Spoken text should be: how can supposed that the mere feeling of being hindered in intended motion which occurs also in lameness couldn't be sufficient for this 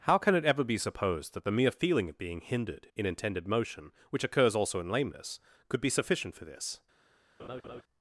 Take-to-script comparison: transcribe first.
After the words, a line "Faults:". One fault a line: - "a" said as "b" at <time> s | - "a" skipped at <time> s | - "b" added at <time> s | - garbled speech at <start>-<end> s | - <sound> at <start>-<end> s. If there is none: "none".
how can it ever be supposed that the mere feeling of being hindered in intended motion which occurs also in lameness could be sufficient for this
Faults:
- "it ever be" added at 0.3 s
- "couldn't" said as "could" at 5.7 s
- laugh at 7.4-7.8 s